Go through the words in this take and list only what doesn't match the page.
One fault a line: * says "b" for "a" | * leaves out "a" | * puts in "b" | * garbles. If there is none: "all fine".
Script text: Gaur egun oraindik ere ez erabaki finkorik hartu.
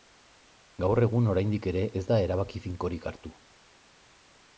* puts in "da"